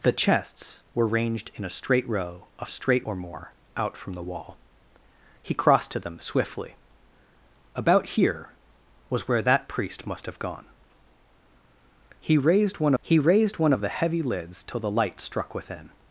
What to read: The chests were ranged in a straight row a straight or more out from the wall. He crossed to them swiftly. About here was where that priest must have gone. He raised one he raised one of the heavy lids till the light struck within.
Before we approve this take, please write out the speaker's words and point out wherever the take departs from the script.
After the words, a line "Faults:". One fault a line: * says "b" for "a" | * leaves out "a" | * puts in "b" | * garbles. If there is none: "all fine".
The chests were ranged in a straight row a straight or more out from the wall. He crossed to them swiftly. About here was where that priest must have gone. He raised one he raised one of the heavy lids till the light struck within.
Faults:
all fine